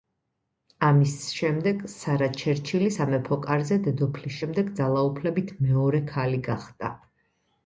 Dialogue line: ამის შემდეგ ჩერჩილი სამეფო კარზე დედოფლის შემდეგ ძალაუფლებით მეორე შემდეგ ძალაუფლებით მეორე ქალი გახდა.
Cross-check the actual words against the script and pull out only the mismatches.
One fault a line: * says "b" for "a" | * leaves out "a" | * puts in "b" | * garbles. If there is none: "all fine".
* puts in "სარა"
* leaves out "შემდეგ ძალაუფლებით მეორე"